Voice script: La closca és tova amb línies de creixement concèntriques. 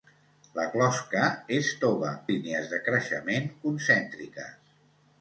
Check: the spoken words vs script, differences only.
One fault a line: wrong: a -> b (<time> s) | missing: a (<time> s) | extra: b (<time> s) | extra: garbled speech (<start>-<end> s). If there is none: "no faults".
missing: amb (2.1 s)